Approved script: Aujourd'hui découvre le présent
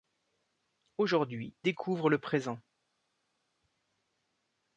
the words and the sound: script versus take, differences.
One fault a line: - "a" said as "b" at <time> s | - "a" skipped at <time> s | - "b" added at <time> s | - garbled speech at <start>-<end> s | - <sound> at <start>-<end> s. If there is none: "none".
none